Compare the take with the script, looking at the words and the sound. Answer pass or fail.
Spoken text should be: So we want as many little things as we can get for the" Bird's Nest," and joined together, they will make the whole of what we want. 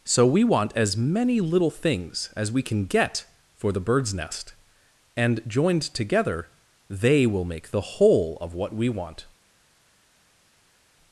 pass